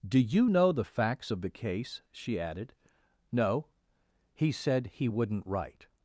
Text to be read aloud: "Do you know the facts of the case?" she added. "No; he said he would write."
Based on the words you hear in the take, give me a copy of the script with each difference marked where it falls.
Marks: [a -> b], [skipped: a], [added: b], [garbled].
"Do you know the facts of the case?" she added. "No; he said he [would -> wouldn't] write."